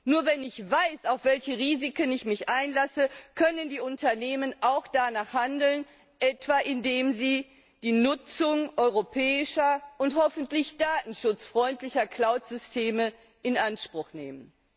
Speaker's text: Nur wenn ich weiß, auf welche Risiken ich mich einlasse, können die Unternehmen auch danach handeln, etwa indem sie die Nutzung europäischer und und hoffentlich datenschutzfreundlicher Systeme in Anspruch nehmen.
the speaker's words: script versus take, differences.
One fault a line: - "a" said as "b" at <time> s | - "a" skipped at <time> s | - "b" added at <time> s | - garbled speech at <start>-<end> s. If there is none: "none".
- "und" skipped at 10.2 s
- "Cloud" added at 12.1 s